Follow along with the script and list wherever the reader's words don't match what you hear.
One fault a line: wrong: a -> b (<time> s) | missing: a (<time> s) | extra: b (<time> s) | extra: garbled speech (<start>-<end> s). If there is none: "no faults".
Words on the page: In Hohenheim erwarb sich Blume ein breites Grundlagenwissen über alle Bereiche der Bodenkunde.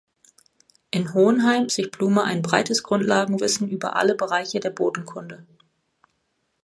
missing: erwarb (1.7 s)